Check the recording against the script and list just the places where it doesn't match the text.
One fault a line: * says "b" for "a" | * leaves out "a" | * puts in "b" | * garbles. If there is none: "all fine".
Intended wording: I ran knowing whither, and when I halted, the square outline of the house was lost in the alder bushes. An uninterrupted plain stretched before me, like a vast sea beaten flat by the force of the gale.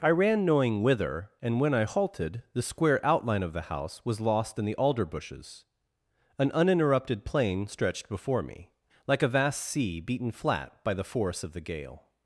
all fine